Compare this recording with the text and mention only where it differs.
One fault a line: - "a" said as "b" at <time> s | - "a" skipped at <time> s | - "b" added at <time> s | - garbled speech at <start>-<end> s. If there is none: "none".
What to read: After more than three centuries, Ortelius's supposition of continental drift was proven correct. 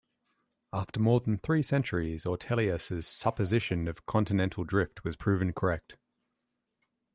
none